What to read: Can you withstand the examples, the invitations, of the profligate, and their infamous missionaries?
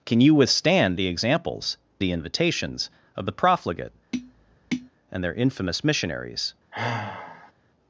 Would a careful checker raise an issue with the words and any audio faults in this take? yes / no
yes